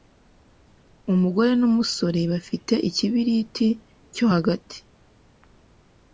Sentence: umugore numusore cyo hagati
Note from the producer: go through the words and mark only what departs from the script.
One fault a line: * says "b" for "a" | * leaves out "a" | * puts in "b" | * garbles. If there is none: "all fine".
* puts in "bafite Ikibiriti"